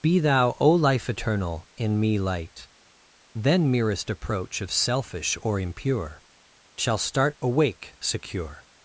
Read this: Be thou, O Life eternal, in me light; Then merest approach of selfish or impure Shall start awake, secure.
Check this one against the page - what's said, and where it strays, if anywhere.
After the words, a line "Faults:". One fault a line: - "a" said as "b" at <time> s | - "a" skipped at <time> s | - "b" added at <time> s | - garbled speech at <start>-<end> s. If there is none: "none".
Be thou, O Life eternal, in me light; Then merest approach of selfish or impure Shall start awake, secure.
Faults:
none